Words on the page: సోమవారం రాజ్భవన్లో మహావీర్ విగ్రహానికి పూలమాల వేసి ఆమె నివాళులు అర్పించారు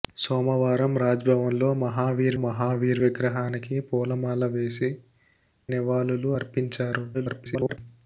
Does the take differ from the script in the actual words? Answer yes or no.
yes